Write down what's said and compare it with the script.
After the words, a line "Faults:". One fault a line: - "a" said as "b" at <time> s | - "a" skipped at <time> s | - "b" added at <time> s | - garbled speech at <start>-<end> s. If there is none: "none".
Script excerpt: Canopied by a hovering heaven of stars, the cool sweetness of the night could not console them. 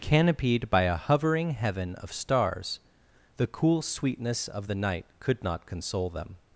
Canopied by a hovering heaven of stars, the cool sweetness of the night could not console them.
Faults:
none